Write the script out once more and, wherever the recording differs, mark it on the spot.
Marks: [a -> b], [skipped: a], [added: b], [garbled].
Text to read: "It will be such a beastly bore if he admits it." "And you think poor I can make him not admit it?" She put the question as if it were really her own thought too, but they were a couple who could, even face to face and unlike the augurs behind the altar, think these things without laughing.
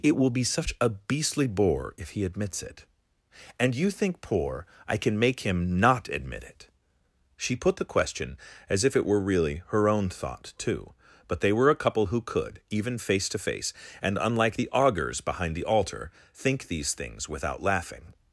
"It will be such a beastly bore if he admits it." "And you think poor I can make him not admit it?" She put the question as if it were really her own thought too, but they were a couple who could, even face to face and unlike the augurs behind the altar, think these things without laughing.